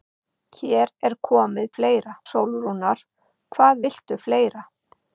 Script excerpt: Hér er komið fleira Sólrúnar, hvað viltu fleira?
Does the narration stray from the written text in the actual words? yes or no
no